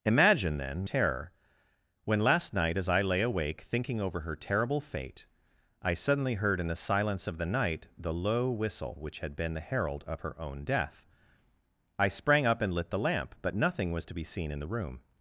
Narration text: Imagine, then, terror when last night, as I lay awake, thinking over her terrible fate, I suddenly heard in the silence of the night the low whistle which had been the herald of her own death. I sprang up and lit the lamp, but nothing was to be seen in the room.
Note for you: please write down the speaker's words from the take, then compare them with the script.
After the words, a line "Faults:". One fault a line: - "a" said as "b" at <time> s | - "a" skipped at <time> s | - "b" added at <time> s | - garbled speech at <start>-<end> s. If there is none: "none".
Imagine, then, terror when last night, as I lay awake, thinking over her terrible fate, I suddenly heard in the silence of the night the low whistle which had been the herald of her own death. I sprang up and lit the lamp, but nothing was to be seen in the room.
Faults:
none